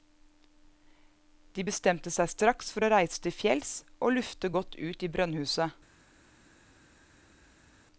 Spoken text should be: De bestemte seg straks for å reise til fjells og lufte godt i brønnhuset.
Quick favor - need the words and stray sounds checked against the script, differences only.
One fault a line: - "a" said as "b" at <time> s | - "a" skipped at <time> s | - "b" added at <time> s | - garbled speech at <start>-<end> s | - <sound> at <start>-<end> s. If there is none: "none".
- "ut" added at 4.8 s